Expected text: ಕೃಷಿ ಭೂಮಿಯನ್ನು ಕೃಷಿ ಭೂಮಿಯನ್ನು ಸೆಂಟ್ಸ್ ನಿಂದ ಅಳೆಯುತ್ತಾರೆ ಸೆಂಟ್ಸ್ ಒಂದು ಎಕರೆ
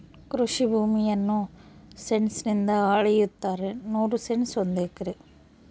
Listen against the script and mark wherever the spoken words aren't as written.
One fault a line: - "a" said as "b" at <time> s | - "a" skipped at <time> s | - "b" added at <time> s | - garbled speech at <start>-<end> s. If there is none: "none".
- "ಕೃಷಿ ಭೂಮಿಯನ್ನು" skipped at 1.4 s
- "ನೂರು" added at 3.9 s